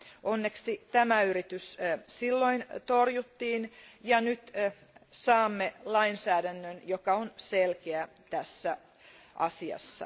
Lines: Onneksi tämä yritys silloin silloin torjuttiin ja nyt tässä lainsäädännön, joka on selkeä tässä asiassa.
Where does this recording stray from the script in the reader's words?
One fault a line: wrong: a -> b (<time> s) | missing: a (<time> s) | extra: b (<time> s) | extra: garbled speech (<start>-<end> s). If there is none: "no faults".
missing: silloin (2.7 s)
wrong: tässä -> saamme (5.1 s)